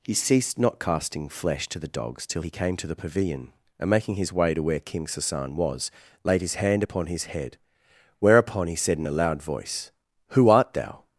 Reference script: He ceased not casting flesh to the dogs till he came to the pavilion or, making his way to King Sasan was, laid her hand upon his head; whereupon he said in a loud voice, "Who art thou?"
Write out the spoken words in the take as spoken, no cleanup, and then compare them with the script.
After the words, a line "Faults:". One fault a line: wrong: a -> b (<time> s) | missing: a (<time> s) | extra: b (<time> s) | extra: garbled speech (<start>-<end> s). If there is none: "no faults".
He ceased not casting flesh to the dogs till he came to the pavilion and, making his way to where King Sasan was, laid his hand upon his head; whereupon he said in a loud voice, "Who art thou?"
Faults:
wrong: or -> and (3.8 s)
extra: where (4.6 s)
wrong: her -> his (6.4 s)